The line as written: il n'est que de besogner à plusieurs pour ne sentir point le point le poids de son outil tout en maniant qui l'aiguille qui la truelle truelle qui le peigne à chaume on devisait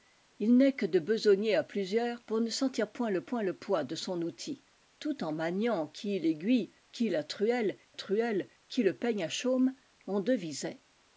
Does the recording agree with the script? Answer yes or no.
yes